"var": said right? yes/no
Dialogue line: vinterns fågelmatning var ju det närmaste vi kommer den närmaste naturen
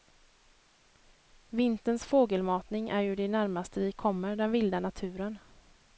no